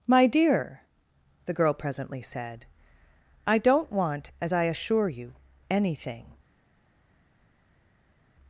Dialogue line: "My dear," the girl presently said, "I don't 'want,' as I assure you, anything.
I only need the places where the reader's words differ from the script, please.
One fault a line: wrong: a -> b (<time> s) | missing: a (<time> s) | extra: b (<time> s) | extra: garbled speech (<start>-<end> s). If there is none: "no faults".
no faults